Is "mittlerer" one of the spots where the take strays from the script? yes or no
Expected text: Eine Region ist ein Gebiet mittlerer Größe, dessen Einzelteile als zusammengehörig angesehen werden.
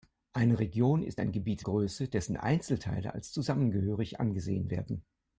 yes